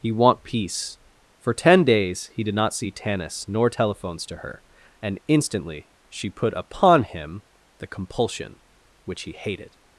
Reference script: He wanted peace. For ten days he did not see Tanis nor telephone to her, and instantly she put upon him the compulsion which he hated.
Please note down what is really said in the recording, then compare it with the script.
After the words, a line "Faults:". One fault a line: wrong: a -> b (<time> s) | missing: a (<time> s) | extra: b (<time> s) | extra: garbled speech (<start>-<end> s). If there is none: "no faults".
He want peace. For ten days he did not see Tanis nor telephones to her, and instantly she put upon him the compulsion which he hated.
Faults:
wrong: wanted -> want (0.1 s)
wrong: telephone -> telephones (3.7 s)